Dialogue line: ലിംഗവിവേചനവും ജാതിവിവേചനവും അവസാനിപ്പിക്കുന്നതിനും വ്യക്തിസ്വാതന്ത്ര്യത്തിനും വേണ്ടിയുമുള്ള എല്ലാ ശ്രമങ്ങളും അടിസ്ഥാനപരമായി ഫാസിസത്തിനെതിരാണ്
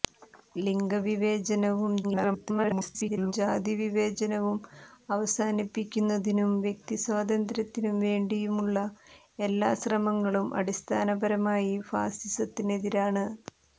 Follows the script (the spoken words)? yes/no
no